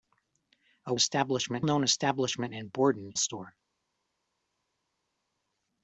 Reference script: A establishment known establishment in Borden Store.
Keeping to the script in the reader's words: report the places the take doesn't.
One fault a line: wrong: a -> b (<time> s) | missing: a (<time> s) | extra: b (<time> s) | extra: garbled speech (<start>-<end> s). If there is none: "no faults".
no faults